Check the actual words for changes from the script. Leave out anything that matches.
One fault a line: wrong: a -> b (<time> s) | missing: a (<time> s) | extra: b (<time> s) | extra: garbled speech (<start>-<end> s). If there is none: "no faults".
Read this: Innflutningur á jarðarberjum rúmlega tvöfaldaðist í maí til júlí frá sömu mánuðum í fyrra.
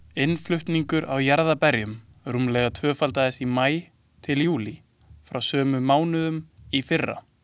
no faults